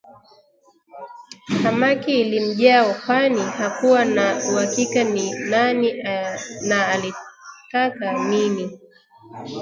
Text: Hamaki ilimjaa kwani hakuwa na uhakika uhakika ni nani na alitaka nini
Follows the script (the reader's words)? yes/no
no